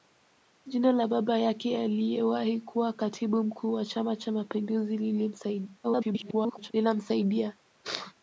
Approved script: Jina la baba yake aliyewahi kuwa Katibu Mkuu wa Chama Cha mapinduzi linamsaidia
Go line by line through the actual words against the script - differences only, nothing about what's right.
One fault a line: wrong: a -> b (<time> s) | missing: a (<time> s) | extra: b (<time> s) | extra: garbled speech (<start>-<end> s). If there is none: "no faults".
extra: garbled speech (5.8-6.7 s)